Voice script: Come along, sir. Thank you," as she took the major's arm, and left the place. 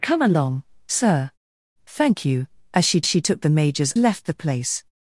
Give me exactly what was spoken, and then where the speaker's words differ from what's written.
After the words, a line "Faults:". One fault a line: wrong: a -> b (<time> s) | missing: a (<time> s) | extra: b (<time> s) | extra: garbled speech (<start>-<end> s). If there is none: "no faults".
Come along, sir. Thank you," as she she took the major's left the place.
Faults:
extra: she (3.1 s)
missing: arm and (3.9 s)